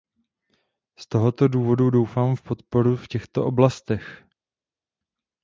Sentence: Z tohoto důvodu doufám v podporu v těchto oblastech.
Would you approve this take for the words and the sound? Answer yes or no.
yes